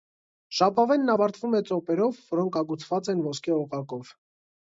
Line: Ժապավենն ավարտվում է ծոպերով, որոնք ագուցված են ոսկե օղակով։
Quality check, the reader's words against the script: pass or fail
pass